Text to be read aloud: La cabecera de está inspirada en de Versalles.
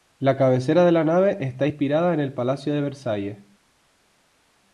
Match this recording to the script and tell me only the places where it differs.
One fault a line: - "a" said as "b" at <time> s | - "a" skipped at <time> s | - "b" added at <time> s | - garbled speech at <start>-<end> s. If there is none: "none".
- "la nave" added at 0.9 s
- "el Palacio" added at 2.2 s